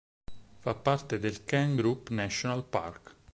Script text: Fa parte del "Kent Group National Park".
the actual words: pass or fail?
pass